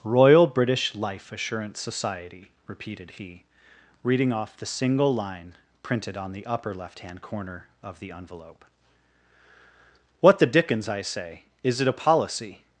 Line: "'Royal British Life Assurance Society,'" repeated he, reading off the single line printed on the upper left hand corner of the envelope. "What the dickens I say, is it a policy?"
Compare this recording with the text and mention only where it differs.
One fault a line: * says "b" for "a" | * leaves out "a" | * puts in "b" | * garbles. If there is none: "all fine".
all fine